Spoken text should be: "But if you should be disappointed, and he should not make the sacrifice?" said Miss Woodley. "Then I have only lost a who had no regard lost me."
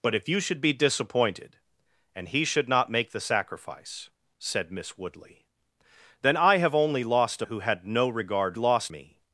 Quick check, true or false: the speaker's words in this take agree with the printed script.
true